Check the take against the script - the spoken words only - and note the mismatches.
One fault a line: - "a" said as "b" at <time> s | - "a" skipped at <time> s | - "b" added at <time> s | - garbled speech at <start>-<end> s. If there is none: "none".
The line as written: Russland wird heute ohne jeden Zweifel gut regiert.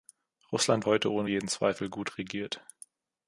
- "wird" skipped at 0.9 s